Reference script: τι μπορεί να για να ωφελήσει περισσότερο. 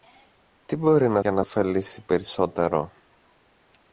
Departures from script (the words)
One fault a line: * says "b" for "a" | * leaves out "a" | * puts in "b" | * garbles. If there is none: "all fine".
all fine